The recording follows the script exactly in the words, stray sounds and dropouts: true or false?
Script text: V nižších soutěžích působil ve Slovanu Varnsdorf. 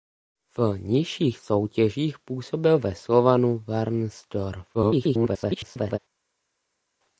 false